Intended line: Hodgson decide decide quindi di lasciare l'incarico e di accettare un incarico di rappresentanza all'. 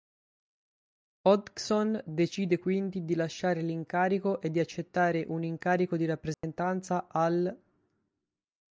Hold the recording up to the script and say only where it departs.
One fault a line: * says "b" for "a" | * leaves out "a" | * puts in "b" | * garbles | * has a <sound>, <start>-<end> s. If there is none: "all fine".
* leaves out "decide"
* has a dropout, 6.3-6.4 s